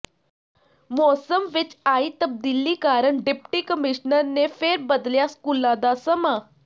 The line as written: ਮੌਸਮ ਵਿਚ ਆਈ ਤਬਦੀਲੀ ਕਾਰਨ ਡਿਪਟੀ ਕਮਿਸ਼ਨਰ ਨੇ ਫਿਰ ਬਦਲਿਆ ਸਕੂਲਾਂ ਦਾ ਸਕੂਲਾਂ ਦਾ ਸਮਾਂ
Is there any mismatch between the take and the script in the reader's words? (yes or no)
yes